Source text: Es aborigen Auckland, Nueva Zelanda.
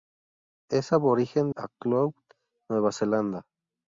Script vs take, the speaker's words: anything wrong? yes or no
no